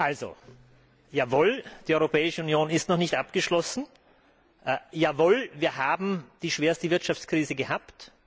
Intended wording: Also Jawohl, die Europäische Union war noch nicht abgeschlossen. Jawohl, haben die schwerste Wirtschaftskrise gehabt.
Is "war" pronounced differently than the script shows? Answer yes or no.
yes